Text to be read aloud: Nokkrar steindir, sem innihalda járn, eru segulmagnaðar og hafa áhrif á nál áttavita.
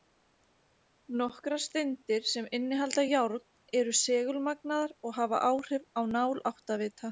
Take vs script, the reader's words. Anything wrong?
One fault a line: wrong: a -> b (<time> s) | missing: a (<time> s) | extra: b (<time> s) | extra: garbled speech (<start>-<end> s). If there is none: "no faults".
no faults